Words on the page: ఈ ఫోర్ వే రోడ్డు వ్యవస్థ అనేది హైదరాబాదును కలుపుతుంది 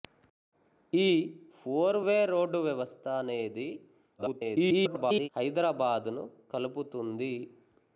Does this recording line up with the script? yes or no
no